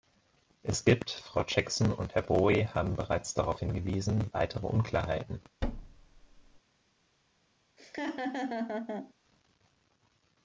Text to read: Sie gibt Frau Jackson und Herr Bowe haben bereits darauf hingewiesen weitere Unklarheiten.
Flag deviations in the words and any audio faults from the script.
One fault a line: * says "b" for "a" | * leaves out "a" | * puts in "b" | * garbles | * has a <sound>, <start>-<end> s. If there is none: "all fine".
* says "Es" for "Sie"
* has a thud, 5.6-6.6 s
* has a laugh, 7.8-9.1 s